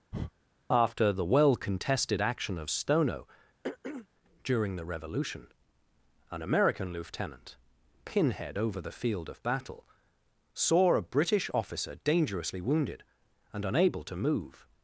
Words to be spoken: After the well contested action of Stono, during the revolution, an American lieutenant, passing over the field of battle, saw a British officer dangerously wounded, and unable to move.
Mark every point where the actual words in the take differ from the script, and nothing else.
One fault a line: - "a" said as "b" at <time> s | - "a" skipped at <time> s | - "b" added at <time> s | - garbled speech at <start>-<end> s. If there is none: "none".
- "passing" said as "pinhead" at 8.0 s